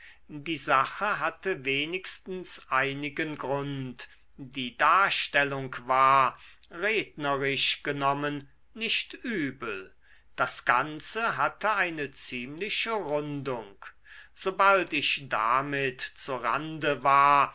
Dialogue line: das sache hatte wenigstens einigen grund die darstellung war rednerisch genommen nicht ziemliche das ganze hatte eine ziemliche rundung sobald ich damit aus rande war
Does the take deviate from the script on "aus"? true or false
true